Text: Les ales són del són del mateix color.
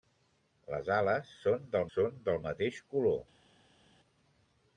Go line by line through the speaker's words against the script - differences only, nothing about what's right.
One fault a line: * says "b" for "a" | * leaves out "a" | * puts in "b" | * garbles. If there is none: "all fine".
all fine